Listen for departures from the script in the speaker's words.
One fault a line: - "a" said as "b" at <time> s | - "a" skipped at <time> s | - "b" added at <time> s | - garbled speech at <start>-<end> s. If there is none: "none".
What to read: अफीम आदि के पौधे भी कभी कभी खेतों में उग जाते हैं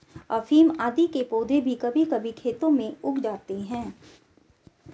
none